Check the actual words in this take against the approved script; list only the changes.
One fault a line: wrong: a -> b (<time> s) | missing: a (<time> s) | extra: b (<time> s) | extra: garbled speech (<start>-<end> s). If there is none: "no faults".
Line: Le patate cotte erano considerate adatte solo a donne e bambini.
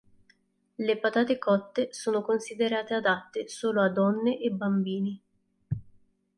wrong: erano -> sono (1.9 s)